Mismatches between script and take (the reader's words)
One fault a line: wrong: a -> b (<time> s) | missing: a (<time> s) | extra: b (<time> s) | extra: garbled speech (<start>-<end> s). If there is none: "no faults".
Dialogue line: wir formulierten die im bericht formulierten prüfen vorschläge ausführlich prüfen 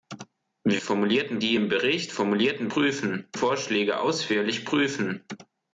no faults